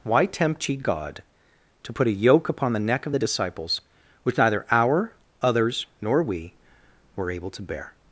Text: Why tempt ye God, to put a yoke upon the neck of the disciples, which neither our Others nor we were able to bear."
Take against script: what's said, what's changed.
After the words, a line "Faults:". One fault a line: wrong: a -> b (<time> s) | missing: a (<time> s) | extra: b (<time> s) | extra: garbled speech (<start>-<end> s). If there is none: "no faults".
Why tempt ye God, to put a yoke upon the neck of the disciples, which neither our Others nor we were able to bear."
Faults:
no faults